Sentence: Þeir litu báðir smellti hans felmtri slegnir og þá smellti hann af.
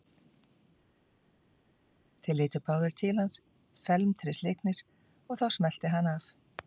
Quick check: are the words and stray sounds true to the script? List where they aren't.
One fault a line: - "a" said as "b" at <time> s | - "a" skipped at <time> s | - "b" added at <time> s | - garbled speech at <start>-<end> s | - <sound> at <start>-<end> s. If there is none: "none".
- "smellti" said as "til" at 3.0 s